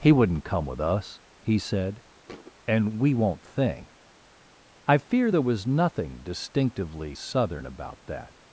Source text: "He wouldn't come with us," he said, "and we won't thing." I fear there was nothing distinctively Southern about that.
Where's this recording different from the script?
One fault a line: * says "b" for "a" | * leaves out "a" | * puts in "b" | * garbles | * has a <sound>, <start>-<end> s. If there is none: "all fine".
* has a thud, 2.3-2.5 s